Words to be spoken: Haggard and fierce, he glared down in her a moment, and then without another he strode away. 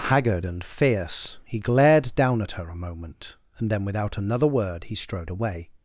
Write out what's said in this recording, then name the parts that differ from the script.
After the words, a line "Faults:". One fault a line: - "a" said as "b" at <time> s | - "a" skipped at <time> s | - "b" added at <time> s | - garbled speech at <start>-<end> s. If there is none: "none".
Haggard and fierce, he glared down at her a moment, and then without another word he strode away.
Faults:
- "in" said as "at" at 2.4 s
- "word" added at 4.5 s